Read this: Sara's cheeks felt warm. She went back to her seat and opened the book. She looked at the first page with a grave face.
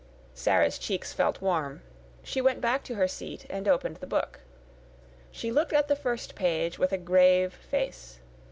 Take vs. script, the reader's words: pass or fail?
pass